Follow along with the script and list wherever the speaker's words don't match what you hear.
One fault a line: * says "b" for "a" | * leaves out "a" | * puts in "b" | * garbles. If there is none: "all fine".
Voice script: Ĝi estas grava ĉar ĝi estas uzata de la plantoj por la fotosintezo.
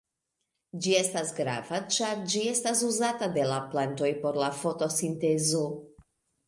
all fine